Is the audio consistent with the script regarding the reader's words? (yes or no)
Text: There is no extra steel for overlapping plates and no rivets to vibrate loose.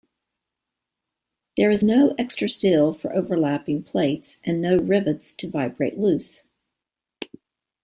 yes